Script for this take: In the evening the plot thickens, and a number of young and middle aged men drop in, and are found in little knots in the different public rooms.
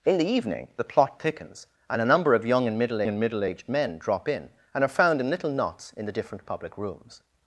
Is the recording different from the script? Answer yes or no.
yes